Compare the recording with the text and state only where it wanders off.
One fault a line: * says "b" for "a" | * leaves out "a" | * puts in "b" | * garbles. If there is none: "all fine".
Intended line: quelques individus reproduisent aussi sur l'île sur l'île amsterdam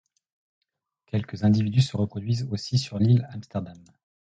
* puts in "se"
* leaves out "sur l'île"